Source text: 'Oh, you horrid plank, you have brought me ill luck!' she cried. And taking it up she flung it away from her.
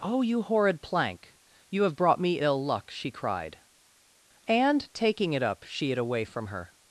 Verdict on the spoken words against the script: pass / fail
fail